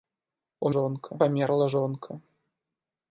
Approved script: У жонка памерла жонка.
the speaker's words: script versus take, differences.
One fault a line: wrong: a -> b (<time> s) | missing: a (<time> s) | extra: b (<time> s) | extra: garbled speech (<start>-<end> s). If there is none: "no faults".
no faults